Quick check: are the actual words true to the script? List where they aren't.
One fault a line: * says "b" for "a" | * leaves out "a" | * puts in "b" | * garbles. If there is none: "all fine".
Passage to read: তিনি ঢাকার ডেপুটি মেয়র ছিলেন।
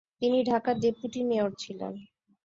all fine